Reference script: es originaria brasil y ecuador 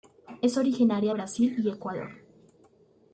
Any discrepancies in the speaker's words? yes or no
no